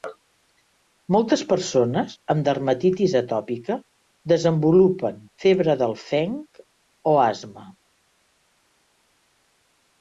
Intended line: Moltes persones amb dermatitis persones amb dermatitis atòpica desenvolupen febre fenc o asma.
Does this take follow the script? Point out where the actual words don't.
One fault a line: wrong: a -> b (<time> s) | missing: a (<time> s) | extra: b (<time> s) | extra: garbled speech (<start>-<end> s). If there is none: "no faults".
missing: persones amb dermatitis (3.1 s)
extra: del (5.8 s)